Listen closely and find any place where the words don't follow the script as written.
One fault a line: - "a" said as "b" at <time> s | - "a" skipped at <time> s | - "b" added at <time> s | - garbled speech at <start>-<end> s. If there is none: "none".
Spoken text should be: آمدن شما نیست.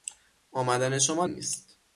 none